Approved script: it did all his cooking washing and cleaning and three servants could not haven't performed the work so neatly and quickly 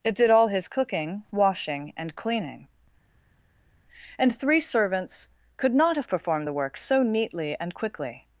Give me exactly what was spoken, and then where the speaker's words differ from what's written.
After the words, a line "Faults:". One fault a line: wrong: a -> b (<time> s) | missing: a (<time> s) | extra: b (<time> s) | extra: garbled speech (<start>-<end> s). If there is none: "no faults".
it did all his cooking washing and cleaning and three servants could not have performed the work so neatly and quickly
Faults:
wrong: haven't -> have (5.9 s)